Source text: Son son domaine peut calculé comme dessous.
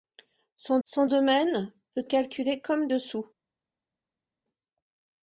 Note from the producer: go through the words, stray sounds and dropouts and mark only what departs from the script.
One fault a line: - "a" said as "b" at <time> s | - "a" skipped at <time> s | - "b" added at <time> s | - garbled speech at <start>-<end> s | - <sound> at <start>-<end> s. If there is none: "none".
none